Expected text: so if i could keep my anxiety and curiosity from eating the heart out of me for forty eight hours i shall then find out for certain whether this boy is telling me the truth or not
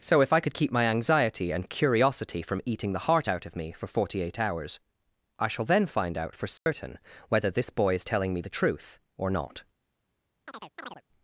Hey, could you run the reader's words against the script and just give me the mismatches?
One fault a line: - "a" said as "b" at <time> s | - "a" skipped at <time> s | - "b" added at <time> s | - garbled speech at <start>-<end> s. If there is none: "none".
none